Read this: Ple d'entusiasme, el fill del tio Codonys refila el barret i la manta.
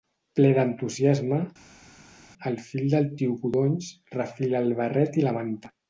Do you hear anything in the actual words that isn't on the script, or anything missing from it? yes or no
no